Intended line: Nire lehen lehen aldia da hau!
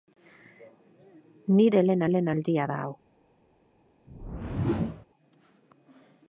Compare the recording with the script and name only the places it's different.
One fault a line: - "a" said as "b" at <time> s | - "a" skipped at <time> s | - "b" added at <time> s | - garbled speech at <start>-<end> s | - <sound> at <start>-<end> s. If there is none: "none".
- whoosh at 4.1-5.1 s